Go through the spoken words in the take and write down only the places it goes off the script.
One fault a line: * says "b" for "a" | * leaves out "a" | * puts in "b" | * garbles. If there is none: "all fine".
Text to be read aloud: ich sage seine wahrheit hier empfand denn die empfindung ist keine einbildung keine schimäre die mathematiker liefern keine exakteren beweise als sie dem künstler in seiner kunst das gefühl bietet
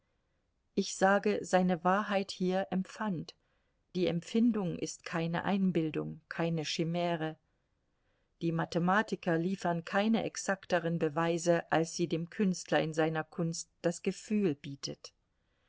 * leaves out "denn"